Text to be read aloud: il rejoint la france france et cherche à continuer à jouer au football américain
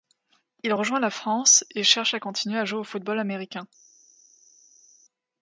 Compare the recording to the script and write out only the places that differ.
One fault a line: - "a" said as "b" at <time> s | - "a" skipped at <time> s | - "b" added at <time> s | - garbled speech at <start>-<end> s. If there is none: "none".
- "france" skipped at 1.6 s